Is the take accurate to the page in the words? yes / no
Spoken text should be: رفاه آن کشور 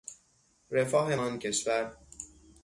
yes